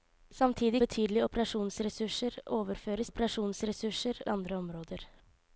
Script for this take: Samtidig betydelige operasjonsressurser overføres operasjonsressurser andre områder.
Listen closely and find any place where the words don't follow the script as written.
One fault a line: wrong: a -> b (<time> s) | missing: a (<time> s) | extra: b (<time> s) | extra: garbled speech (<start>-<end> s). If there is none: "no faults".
no faults